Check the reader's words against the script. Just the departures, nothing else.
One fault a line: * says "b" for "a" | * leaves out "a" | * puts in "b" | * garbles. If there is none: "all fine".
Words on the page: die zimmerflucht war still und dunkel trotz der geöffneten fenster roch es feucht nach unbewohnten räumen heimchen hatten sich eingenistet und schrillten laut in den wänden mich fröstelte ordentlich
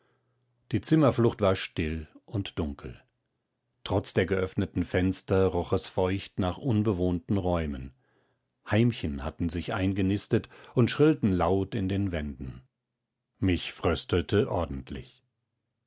all fine